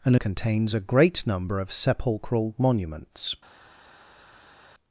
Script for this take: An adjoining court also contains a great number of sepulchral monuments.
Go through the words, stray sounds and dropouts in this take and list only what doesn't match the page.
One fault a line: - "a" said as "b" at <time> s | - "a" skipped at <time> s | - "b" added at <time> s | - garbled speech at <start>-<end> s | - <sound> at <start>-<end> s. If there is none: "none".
- "adjoining court also" skipped at 0.1 s